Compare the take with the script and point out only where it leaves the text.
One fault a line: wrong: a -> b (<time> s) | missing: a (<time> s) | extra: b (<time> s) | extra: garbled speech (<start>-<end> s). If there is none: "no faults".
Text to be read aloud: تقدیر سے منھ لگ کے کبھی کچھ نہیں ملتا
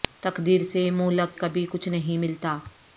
missing: کے (1.4 s)